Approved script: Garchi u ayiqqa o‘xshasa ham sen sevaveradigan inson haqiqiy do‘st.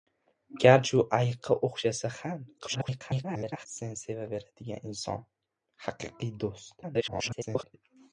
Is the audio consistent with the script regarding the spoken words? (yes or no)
no